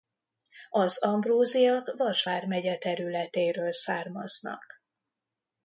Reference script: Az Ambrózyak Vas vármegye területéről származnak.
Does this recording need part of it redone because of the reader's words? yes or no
no